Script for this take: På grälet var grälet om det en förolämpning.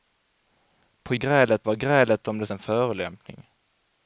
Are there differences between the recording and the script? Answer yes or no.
no